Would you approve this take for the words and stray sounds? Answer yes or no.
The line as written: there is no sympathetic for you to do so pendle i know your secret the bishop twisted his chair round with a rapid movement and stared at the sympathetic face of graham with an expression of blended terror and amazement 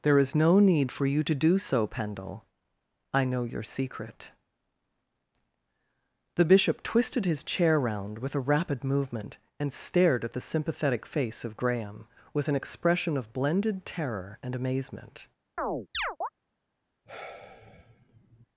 no